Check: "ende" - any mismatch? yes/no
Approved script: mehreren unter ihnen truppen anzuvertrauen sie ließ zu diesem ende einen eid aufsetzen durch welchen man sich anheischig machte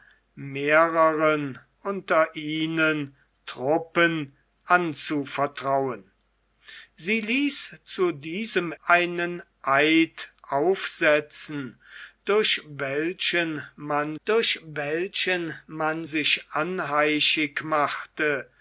yes